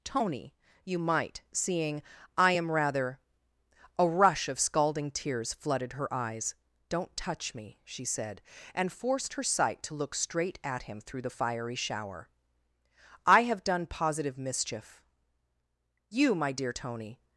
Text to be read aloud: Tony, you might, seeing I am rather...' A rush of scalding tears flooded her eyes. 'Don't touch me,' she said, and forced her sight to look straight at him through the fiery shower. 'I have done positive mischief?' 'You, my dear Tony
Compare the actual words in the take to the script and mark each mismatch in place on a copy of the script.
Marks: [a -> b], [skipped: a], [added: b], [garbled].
Tony, you might, seeing I am rather...' A rush of scalding tears flooded her eyes. 'Don't touch me,' she said, and forced her sight to look straight at him through the fiery shower. 'I have done positive mischief?' 'You, my dear Tony